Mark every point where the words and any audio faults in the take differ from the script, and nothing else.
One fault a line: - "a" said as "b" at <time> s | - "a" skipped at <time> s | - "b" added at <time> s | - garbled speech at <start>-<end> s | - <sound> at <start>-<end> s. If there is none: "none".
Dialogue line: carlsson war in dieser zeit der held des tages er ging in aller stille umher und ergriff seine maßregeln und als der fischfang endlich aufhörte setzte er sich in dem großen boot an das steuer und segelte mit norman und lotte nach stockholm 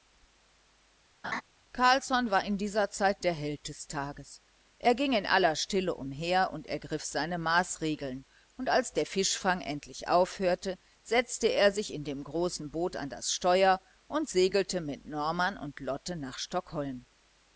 - laugh at 1.2-1.4 s